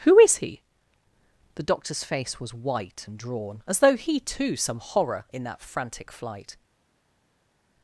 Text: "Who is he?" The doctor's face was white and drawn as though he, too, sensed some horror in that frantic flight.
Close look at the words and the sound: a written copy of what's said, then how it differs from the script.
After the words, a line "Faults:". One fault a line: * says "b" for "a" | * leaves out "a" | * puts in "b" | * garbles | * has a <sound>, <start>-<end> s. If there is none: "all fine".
"Who is he?" The doctor's face was white and drawn as though he, too, some horror in that frantic flight.
Faults:
* leaves out "sensed"